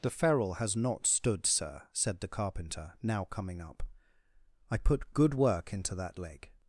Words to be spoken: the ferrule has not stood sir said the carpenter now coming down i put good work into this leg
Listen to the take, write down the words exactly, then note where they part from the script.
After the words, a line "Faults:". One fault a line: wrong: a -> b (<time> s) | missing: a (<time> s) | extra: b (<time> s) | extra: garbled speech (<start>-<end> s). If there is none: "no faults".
the ferrule has not stood sir said the carpenter now coming up i put good work into that leg
Faults:
wrong: down -> up (3.6 s)
wrong: this -> that (6.0 s)